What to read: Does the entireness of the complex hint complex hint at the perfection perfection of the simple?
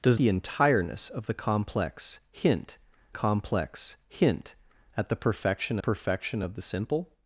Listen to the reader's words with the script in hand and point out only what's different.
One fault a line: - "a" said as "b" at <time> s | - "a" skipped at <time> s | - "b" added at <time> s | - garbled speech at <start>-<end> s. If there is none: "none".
none